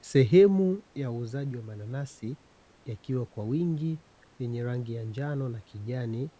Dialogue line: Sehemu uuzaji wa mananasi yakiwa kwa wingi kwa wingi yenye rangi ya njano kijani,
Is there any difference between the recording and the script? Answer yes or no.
yes